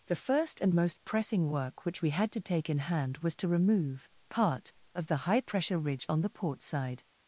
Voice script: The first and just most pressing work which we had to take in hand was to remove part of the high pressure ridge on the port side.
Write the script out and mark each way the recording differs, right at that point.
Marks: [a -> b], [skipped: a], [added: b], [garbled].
The first and [skipped: just] most pressing work which we had to take in hand was to remove part of the high pressure ridge on the port side.